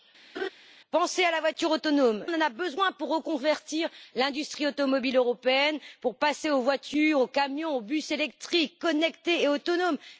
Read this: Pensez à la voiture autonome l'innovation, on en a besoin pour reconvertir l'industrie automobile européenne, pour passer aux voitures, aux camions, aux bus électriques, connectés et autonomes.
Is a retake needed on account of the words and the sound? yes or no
yes